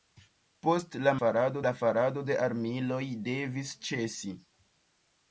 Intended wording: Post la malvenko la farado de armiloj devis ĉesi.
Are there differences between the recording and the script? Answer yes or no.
yes